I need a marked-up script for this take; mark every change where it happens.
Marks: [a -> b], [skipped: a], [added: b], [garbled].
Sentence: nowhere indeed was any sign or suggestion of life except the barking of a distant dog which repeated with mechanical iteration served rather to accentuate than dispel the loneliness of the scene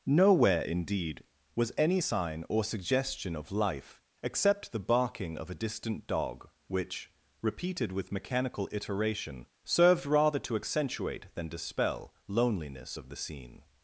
nowhere indeed was any sign or suggestion of life except the barking of a distant dog which repeated with mechanical iteration served rather to accentuate than dispel [skipped: the] loneliness of the scene